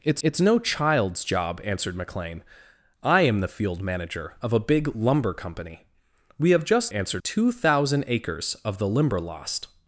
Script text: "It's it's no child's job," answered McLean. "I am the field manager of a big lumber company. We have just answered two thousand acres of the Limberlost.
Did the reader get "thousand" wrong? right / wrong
right